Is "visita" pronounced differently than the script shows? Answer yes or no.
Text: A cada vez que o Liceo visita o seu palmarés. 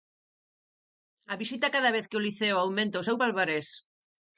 yes